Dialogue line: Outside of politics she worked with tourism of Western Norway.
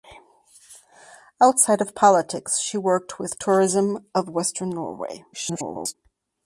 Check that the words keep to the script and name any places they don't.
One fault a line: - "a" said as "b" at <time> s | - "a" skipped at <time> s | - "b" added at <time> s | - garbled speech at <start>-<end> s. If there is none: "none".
- garbled speech at 5.3-5.9 s